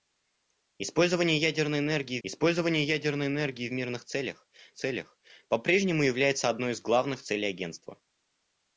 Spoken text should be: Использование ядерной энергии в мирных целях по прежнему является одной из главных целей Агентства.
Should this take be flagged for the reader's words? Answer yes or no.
yes